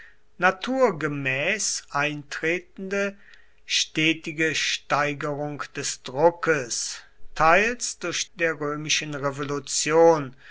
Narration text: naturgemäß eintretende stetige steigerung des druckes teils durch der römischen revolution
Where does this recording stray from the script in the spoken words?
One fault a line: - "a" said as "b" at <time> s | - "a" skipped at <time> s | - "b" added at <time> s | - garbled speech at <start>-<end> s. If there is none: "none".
none